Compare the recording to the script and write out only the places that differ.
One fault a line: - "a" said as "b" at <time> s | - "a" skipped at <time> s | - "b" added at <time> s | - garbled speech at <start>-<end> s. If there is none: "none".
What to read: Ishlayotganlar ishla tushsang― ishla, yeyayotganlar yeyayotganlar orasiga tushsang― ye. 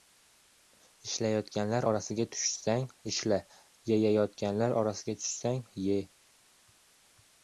- "ishla" said as "orasiga" at 1.9 s
- "yeyayotganlar" skipped at 4.8 s